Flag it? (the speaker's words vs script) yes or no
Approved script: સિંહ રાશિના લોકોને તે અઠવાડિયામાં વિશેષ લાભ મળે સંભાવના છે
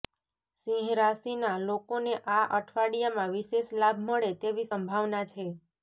yes